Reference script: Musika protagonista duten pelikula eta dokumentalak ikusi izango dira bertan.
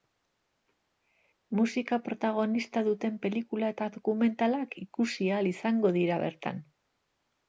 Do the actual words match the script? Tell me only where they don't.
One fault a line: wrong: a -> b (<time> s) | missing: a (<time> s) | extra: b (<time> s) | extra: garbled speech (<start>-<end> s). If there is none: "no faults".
extra: ahal (5.3 s)